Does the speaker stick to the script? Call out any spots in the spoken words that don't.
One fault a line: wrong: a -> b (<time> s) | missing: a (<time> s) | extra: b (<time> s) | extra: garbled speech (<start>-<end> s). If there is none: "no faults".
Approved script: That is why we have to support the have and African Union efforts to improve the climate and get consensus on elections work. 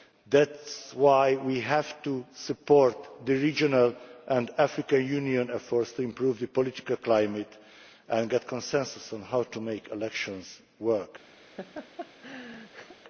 wrong: have -> regional (3.3 s)
extra: political (6.5 s)
extra: how to make (9.2 s)